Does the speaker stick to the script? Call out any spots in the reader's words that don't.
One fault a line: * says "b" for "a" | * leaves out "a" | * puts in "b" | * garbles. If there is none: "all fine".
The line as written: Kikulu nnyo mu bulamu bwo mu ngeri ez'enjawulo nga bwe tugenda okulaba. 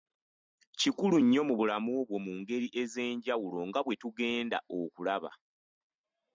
all fine